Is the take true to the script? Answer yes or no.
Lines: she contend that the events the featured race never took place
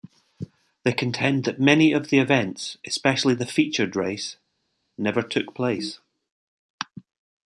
no